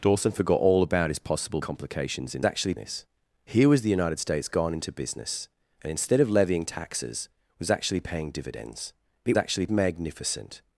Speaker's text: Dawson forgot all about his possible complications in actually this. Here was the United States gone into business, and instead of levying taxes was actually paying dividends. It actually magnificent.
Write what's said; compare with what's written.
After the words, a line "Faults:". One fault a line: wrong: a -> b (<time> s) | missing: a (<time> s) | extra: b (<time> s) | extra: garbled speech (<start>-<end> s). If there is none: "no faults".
Dawson forgot all about his possible complications in actually this. Here was the United States gone into business, and instead of levying taxes was actually paying dividends. It actually magnificent.
Faults:
no faults